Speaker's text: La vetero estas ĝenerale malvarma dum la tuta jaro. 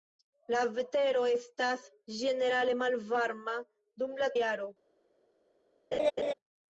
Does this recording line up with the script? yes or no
no